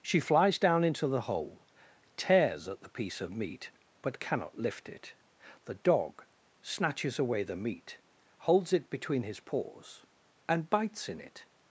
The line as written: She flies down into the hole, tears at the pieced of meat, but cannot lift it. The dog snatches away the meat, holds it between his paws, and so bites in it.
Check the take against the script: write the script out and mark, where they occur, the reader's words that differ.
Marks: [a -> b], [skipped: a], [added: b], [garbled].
She flies down into the hole, tears at the [pieced -> piece] of meat, but cannot lift it. The dog snatches away the meat, holds it between his paws, and [skipped: so] bites in it.